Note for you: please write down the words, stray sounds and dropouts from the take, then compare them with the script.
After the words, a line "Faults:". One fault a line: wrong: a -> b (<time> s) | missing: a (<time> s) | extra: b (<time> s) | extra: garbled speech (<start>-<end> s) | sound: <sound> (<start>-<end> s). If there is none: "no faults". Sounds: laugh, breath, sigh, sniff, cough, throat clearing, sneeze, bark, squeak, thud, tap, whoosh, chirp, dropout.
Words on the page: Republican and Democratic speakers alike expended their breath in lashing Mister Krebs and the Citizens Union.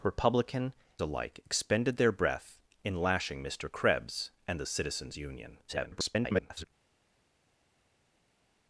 Republican alike expended their breath in lashing Mister Krebs and the Citizens Union. [garbled]
Faults:
missing: and Democratic speakers (0.7 s)
extra: garbled speech (5.7-6.7 s)